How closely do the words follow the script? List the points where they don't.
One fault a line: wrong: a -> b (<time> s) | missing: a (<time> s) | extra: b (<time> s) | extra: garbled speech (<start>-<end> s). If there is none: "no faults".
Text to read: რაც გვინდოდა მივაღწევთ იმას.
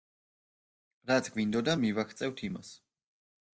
no faults